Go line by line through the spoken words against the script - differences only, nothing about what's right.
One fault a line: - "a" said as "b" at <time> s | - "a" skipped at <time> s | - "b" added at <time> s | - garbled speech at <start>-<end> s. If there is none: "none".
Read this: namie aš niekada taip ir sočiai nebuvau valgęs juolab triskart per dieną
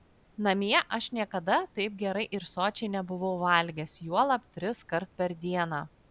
- "gerai" added at 2.0 s